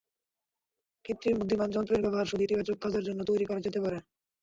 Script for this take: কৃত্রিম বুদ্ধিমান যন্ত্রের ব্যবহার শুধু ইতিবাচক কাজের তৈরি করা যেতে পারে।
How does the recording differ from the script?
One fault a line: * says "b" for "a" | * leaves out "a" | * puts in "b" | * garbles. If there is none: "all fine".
* puts in "জন্য"